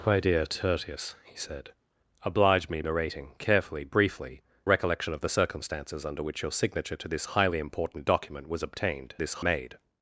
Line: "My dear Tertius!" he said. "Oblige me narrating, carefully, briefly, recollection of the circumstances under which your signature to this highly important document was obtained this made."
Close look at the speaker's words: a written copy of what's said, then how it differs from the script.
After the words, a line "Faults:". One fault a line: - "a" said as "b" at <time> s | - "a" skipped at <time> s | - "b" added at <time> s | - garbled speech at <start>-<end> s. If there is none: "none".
"My dear Tertius!" he said. "Oblige me narrating, carefully, briefly, recollection of the circumstances under which your signature to this highly important document was obtained this made."
Faults:
none